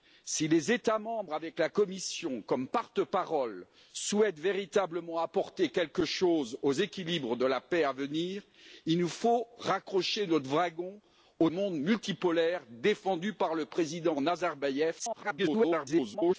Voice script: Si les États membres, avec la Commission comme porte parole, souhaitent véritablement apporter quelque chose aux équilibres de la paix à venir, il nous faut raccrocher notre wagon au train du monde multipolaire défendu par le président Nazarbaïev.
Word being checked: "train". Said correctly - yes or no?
no